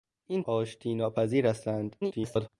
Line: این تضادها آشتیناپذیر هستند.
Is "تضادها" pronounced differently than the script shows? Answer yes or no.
yes